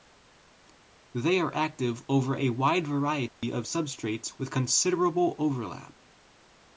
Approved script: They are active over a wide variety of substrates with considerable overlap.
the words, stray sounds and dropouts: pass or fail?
fail